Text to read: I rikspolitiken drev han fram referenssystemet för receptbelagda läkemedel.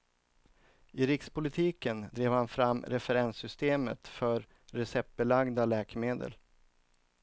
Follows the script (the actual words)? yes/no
yes